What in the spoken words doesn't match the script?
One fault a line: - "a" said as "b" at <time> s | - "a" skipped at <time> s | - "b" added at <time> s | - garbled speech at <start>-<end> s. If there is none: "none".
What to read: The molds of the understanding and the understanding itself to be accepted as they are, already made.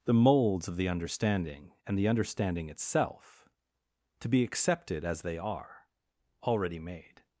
none